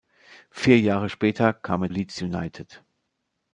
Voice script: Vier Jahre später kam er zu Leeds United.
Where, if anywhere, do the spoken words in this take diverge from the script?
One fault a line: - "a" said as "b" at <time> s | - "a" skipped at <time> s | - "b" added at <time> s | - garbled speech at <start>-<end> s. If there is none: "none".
- "zu" skipped at 1.9 s